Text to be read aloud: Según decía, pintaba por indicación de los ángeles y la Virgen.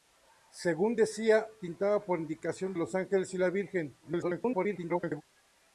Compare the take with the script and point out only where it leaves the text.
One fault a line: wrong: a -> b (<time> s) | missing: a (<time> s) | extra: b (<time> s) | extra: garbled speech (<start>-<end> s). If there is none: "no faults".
missing: de (2.7 s)
extra: garbled speech (4.0-5.2 s)